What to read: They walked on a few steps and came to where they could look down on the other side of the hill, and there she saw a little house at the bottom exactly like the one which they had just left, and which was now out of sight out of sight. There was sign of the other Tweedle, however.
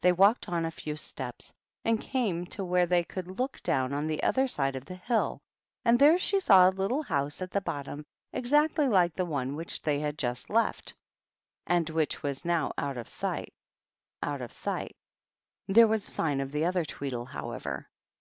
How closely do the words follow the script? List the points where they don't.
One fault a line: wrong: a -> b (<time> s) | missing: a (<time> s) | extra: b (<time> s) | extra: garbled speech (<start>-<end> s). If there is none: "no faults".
no faults